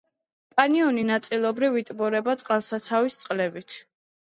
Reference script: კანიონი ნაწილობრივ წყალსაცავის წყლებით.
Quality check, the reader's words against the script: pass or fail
fail